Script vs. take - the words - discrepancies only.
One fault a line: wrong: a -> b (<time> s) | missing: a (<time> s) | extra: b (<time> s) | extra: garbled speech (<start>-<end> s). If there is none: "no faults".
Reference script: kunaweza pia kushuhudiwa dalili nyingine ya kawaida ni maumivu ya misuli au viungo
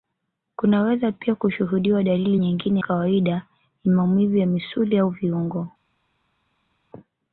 missing: ya (2.8 s)